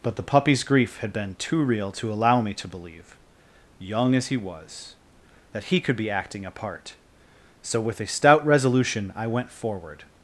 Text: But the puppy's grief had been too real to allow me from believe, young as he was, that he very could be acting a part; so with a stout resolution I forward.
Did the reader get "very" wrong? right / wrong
wrong